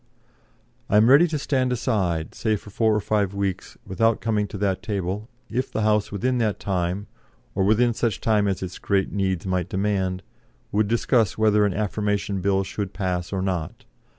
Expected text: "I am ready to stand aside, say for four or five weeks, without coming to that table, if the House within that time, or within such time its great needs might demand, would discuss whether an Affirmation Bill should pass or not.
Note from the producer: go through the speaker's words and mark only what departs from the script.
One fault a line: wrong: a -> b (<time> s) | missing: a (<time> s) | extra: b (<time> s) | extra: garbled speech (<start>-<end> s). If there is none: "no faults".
extra: as (8.5 s)